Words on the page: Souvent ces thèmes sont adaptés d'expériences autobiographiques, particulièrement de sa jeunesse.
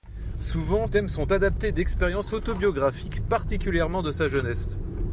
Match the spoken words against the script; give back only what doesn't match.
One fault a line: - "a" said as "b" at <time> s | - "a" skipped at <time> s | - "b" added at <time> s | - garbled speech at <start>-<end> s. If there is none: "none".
- "ces" skipped at 0.9 s